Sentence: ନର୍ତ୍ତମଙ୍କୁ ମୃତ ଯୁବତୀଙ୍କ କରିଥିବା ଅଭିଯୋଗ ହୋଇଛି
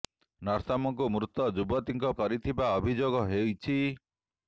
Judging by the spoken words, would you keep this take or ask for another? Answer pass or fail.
pass